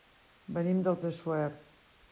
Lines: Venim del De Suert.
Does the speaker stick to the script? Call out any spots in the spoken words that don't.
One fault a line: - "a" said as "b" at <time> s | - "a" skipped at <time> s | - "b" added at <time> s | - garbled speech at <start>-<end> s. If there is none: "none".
none